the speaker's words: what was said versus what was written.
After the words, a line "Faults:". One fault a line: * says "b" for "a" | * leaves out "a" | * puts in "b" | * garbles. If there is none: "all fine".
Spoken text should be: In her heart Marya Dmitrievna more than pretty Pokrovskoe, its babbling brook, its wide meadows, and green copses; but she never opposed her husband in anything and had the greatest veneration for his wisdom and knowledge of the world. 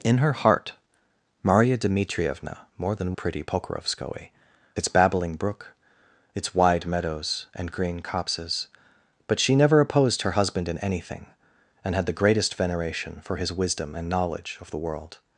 In her heart Marya Dmitrievna more than pretty Pokrovskoe, its babbling brook, its wide meadows, and green copses; but she never opposed her husband in anything and had the greatest veneration for his wisdom and knowledge of the world.
Faults:
all fine